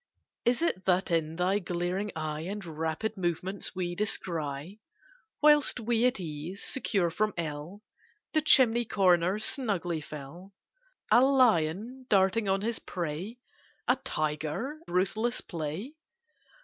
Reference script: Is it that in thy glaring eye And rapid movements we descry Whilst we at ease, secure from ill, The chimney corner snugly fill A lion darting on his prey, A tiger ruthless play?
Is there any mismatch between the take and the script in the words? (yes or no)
no